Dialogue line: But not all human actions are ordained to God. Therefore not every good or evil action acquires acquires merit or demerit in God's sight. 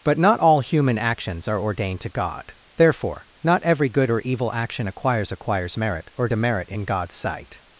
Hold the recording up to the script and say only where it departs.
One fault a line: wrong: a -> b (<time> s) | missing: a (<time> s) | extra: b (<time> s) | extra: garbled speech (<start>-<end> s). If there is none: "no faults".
no faults